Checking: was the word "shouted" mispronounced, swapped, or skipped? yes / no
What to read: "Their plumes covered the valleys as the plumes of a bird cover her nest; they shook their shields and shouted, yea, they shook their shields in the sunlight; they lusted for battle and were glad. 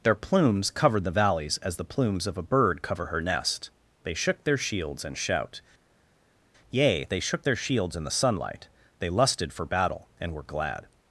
yes